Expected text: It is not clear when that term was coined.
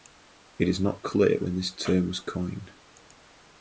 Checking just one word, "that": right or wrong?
wrong